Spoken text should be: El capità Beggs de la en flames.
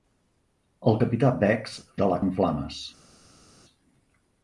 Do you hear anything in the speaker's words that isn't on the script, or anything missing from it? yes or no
no